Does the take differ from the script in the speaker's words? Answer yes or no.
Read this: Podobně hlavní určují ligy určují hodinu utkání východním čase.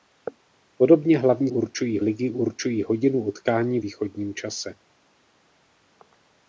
no